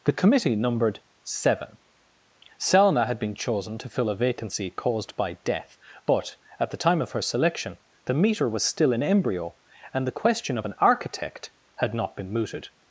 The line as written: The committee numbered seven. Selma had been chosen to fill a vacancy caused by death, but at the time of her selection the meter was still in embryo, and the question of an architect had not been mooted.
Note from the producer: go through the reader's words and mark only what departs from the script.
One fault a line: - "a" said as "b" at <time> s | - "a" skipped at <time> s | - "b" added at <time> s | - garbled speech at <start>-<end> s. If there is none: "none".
none